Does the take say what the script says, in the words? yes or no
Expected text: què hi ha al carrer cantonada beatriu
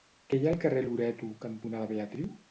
no